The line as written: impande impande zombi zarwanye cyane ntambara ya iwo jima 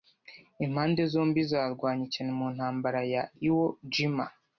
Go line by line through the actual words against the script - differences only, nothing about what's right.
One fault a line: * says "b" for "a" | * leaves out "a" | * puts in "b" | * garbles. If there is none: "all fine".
* leaves out "impande"
* puts in "mu"